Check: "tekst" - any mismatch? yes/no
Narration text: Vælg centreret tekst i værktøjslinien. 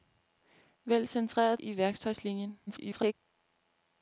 yes